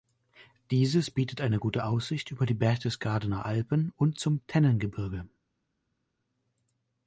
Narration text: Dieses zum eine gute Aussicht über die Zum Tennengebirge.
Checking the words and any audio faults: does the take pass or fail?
fail